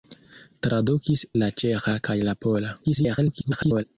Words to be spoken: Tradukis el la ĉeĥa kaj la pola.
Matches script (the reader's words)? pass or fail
fail